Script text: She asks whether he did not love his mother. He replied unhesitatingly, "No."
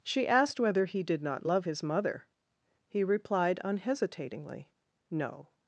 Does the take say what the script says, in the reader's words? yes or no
no